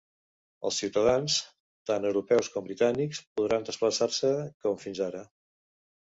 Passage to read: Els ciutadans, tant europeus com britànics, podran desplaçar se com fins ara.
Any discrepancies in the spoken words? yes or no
no